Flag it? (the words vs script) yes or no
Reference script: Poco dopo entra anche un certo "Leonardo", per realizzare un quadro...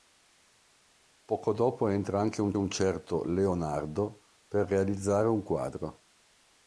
yes